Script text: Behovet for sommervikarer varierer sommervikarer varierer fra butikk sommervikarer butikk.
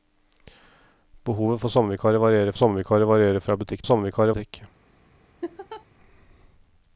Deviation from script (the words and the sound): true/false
true